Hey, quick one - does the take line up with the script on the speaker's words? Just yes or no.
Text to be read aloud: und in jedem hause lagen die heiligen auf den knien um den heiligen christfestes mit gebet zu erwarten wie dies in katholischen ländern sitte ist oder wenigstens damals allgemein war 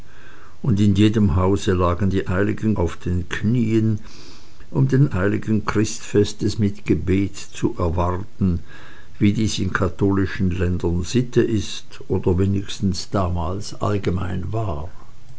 yes